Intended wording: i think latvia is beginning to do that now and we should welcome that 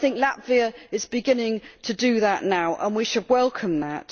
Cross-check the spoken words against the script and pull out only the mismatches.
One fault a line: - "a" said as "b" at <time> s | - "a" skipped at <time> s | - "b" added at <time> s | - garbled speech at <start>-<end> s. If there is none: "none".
none